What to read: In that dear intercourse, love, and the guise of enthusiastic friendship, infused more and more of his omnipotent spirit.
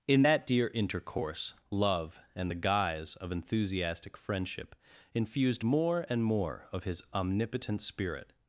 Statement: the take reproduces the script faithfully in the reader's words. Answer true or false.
true